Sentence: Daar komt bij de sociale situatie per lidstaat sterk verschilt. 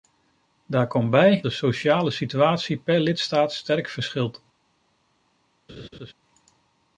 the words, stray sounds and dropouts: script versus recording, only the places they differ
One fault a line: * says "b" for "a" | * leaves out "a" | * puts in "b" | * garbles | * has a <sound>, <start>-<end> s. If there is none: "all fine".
* has a laugh, 5.7-6.1 s